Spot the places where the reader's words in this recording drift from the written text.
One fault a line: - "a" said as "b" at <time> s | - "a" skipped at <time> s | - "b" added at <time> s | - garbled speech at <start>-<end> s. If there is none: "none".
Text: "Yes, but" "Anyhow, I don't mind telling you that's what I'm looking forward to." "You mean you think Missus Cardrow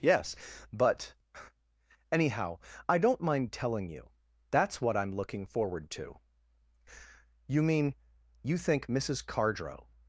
none